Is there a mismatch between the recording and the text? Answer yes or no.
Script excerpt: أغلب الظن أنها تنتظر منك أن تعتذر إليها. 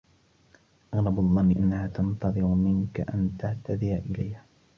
no